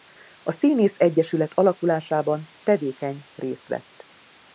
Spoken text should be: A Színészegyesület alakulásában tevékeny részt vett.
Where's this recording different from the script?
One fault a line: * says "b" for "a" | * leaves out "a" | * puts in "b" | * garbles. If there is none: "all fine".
all fine